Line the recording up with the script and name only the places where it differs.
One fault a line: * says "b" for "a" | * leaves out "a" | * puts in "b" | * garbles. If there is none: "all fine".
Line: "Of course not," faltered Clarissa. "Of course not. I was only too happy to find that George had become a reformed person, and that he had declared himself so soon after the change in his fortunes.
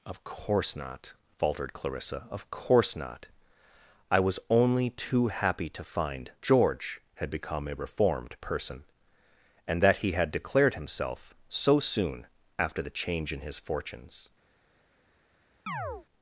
* leaves out "that"